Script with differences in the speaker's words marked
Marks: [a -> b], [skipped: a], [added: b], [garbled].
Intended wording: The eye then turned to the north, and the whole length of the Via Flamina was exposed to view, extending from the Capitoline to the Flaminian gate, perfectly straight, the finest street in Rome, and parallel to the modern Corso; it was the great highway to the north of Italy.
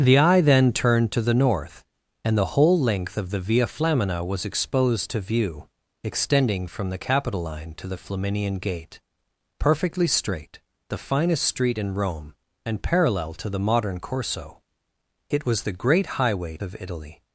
The eye then turned to the north, and the whole length of the Via Flamina was exposed to view, extending from the Capitoline to the Flaminian gate, perfectly straight, the finest street in Rome, and parallel to the modern Corso; it was the great highway [skipped: to the north] of Italy.